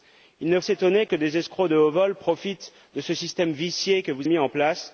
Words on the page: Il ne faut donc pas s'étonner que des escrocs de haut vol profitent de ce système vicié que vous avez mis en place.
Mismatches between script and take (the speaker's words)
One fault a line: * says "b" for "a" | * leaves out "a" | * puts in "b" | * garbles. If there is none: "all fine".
* leaves out "faut donc pas"
* leaves out "avez"